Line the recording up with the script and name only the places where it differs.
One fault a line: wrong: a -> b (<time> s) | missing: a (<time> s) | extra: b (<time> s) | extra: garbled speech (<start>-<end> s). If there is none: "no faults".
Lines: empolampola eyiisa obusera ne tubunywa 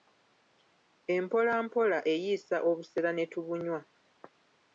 no faults